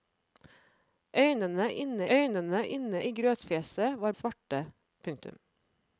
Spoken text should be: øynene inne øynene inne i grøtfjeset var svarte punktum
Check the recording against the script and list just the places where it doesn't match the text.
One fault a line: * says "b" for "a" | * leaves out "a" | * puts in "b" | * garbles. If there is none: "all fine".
all fine